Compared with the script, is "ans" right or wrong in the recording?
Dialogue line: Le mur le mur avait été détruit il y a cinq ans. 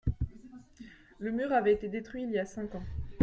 right